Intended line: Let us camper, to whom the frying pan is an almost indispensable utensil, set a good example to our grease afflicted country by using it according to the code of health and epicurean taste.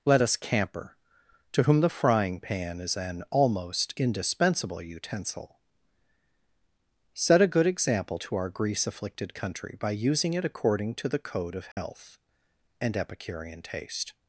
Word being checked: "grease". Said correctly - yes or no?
yes